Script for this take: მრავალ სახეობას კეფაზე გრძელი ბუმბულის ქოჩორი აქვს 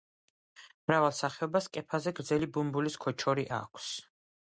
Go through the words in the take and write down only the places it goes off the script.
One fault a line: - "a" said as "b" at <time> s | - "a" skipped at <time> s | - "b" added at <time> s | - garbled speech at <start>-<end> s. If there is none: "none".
none